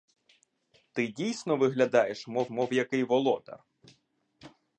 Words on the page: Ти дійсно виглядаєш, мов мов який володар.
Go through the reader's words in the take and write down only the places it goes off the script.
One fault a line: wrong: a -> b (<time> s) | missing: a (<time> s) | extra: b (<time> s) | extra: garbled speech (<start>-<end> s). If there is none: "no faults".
no faults